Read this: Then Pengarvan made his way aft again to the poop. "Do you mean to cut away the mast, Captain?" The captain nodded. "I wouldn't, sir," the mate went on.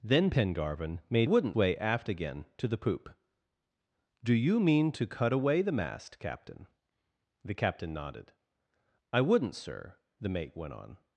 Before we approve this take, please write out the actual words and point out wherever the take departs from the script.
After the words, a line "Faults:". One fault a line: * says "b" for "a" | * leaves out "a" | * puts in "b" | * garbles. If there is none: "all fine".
Then Pengarvan made wouldn't way aft again to the poop. "Do you mean to cut away the mast, Captain?" The captain nodded. "I wouldn't, sir," the mate went on.
Faults:
* says "wouldn't" for "his"